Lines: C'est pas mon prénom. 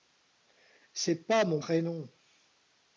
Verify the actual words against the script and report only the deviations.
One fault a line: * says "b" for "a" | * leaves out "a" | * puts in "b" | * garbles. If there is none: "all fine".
all fine